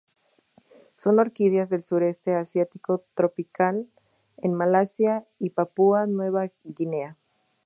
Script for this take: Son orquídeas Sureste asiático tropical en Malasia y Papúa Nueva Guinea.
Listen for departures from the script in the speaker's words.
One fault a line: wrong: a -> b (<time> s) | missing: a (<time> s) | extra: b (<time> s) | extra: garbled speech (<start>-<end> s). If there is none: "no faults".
extra: del (1.7 s)